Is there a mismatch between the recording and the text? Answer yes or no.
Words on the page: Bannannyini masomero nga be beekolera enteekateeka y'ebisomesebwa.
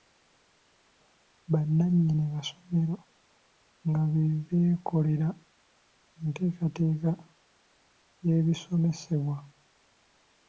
no